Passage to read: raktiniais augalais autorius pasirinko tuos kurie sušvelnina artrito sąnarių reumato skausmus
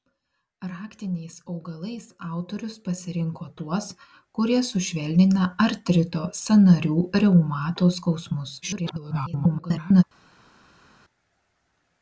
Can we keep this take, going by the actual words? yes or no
no